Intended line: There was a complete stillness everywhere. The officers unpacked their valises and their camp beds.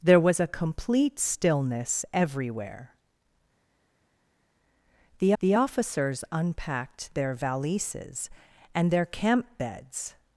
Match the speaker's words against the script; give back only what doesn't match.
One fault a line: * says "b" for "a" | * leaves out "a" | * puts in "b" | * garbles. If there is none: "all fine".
* puts in "the"